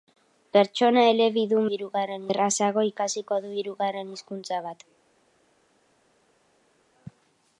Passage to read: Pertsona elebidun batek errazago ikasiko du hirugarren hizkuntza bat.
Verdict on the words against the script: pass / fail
fail